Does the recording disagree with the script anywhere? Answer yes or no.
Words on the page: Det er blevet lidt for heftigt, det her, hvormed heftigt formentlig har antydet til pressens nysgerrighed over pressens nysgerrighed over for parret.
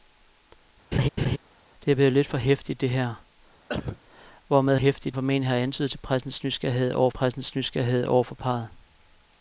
no